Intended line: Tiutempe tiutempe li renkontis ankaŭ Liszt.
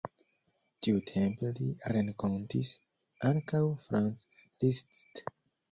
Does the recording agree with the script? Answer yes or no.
no